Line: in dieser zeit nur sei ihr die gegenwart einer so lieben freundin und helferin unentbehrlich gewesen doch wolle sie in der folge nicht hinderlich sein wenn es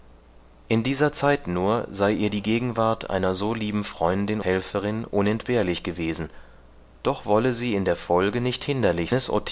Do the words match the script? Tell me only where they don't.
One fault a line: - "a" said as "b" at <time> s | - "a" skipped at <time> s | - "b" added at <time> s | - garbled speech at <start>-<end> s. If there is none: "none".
- "und" skipped at 4.4 s
- "sein wenn" skipped at 9.1 s